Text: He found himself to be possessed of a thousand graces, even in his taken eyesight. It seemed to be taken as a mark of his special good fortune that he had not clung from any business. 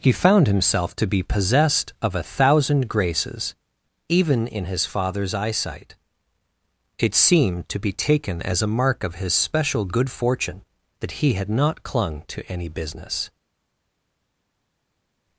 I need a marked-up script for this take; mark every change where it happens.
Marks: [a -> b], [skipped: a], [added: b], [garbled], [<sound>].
He found himself to be possessed of a thousand graces, even in his [taken -> father's] eyesight. It seemed to be taken as a mark of his special good fortune that he had not clung [from -> to] any business.